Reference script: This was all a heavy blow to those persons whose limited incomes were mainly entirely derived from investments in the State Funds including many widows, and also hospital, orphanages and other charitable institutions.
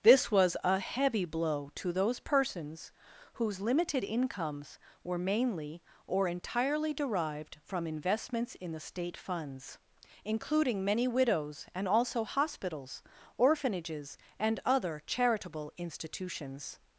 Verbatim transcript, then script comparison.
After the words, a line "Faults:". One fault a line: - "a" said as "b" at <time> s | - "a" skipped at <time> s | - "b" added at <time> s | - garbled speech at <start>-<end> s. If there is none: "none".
This was a heavy blow to those persons whose limited incomes were mainly or entirely derived from investments in the State Funds including many widows, and also hospitals, orphanages and other charitable institutions.
Faults:
- "all" skipped at 0.6 s
- "or" added at 6.1 s
- "hospital" said as "hospitals" at 12.2 s